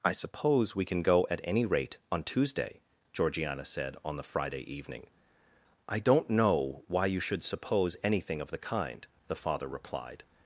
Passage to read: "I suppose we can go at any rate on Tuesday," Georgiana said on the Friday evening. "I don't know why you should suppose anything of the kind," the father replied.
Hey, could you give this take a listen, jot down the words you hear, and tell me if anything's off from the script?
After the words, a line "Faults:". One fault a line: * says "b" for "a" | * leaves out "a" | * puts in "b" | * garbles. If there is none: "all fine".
"I suppose we can go at any rate on Tuesday," Georgiana said on the Friday evening. "I don't know why you should suppose anything of the kind," the father replied.
Faults:
all fine